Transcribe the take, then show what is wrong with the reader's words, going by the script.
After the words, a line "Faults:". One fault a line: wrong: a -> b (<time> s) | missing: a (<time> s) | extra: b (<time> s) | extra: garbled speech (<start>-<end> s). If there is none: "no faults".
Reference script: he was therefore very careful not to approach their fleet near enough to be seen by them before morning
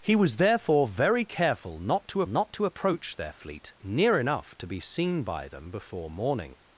he was therefore very careful not to not to approach their fleet near enough to be seen by them before morning
Faults:
extra: not to (2.3 s)